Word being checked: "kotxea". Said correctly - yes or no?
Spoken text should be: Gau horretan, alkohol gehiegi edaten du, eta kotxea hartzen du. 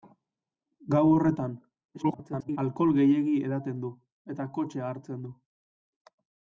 yes